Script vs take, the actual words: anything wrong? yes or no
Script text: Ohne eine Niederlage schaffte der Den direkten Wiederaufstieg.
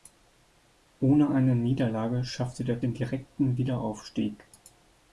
no